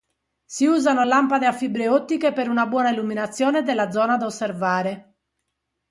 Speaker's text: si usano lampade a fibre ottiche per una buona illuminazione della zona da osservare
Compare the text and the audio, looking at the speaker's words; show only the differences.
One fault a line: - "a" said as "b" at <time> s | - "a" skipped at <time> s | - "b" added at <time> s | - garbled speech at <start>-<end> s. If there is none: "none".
none